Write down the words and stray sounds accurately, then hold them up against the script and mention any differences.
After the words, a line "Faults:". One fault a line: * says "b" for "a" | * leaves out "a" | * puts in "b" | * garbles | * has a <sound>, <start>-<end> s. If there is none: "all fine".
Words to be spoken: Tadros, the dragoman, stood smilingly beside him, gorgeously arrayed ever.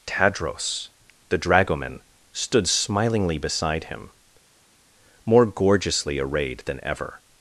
Tadros, the dragoman, stood smilingly beside him, more gorgeously arrayed than ever.
Faults:
* puts in "more"
* puts in "than"